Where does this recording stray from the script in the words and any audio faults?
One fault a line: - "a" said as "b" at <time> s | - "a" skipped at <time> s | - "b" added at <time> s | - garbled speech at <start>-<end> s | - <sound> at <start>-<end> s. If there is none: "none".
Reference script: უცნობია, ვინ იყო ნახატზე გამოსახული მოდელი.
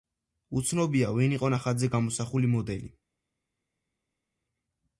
none